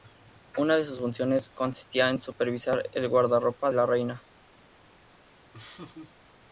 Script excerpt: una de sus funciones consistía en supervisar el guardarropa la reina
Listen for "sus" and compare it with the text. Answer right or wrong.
right